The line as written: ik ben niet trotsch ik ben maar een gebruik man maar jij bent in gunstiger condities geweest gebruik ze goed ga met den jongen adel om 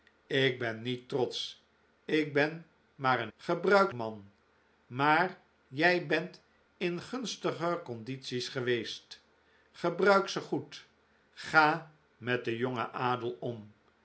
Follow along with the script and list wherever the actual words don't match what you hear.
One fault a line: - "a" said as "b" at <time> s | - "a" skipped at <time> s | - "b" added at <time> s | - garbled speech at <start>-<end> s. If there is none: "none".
none